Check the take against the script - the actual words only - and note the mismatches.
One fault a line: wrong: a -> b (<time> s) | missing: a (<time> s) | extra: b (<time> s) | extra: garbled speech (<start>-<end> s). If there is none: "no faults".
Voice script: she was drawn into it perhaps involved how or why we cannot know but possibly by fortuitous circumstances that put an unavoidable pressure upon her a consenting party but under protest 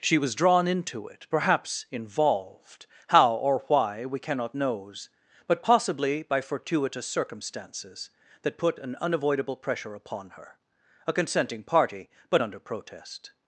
wrong: know -> knows (4.5 s)